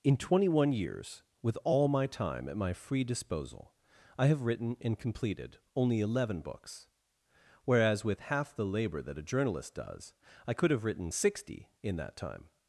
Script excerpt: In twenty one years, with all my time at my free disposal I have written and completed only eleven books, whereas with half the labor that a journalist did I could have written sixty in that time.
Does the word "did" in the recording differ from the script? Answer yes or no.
yes